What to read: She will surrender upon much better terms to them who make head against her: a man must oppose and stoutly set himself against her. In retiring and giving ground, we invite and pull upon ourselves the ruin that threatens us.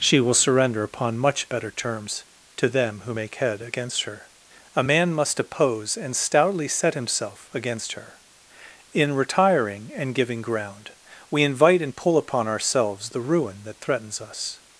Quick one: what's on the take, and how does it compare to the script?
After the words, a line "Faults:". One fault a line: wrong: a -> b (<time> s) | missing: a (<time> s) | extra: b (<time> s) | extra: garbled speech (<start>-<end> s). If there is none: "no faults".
She will surrender upon much better terms to them who make head against her: a man must oppose and stoutly set himself against her. In retiring and giving ground, we invite and pull upon ourselves the ruin that threatens us.
Faults:
no faults